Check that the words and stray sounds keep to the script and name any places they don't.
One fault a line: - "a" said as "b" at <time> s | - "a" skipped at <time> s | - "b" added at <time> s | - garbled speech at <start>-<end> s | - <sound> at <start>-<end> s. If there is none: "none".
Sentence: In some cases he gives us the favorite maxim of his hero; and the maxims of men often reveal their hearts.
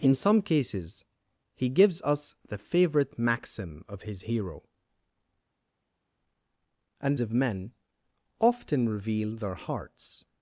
- "the maxims" skipped at 7.2 s